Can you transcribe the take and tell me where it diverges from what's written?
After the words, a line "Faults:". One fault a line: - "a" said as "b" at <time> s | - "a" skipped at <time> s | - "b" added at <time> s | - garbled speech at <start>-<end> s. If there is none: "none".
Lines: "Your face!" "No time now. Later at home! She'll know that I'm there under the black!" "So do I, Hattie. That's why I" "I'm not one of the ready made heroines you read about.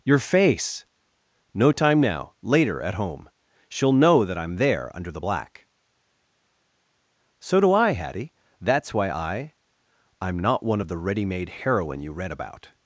"Your face!" "No time now. Later at home! She'll know that I'm there under the black!" "So do I, Hattie. That's why I" "I'm not one of the ready made heroine you read about.
Faults:
- "heroines" said as "heroine" at 11.5 s